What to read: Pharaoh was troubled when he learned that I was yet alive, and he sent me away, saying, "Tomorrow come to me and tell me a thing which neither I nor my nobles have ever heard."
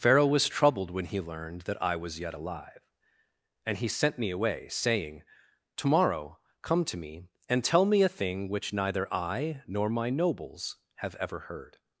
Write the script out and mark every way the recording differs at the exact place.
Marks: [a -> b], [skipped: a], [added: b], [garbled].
Pharaoh was troubled when he learned that I was yet alive, and he sent me away, saying, "Tomorrow come to me and tell me a thing which neither I nor my nobles have ever heard."